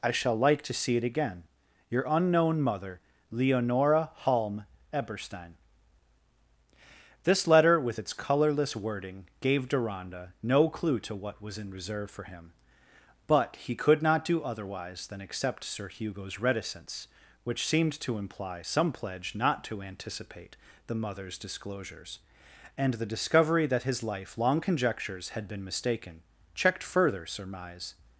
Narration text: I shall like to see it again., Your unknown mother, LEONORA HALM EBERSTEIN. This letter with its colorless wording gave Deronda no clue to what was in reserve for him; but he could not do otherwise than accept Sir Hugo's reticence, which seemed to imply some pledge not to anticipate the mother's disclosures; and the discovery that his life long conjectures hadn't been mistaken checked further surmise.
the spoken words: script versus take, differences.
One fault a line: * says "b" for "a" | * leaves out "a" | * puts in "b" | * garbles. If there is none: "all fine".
* says "had" for "hadn't"